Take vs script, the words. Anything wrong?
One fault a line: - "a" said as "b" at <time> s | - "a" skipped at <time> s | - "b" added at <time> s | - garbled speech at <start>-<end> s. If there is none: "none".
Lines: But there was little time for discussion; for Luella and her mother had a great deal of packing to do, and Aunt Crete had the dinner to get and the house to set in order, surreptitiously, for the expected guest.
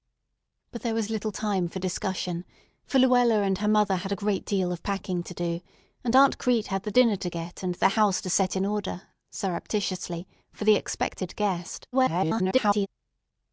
- garbled speech at 11.9-12.9 s